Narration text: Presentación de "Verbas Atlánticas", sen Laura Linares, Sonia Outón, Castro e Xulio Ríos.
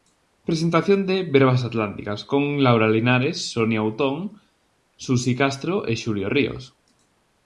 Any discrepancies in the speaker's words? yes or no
yes